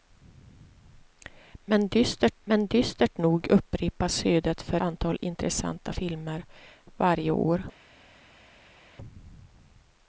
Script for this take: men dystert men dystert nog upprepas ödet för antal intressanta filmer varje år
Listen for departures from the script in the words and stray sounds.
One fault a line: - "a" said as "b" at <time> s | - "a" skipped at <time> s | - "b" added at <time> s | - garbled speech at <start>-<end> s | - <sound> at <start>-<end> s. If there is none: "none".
none